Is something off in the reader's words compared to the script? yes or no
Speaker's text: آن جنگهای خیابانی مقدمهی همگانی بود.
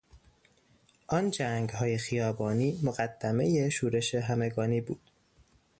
yes